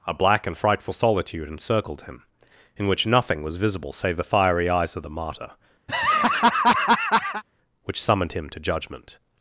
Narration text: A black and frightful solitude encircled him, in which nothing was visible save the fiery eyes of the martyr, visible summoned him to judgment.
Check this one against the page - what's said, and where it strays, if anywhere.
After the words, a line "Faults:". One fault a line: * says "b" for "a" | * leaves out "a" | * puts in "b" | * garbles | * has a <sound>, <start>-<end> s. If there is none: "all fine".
A black and frightful solitude encircled him, in which nothing was visible save the fiery eyes of the martyr, which summoned him to judgment.
Faults:
* has a laugh, 5.9-7.4 s
* says "which" for "visible"